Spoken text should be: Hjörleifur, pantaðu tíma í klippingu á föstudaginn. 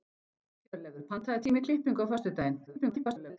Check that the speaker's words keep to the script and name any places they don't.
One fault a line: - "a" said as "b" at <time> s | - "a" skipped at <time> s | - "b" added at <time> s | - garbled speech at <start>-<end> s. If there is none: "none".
- garbled speech at 2.7-3.4 s